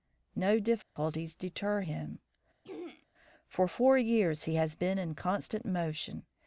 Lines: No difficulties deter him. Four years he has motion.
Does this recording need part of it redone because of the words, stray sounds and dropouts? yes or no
yes